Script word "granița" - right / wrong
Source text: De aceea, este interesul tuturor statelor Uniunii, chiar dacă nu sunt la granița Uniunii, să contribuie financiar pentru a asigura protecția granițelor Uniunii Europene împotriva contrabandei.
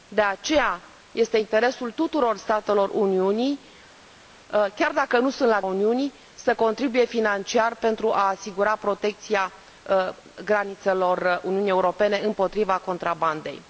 wrong